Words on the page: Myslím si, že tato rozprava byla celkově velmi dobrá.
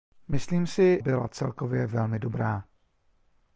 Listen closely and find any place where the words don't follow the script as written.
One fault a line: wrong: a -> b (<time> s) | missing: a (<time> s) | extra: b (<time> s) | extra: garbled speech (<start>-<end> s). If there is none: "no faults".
missing: že tato rozprava (1.0 s)